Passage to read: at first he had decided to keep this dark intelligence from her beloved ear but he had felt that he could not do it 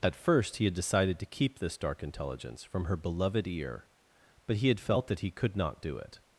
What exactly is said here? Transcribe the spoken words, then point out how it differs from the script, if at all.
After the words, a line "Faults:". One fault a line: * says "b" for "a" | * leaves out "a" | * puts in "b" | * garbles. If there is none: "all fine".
at first he had decided to keep this dark intelligence from her beloved ear but he had felt that he could not do it
Faults:
all fine